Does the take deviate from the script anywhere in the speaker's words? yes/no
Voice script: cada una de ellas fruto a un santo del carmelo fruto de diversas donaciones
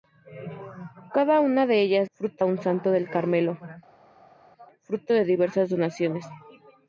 no